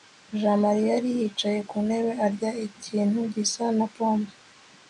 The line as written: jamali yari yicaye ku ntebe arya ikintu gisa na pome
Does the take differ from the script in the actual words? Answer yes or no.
no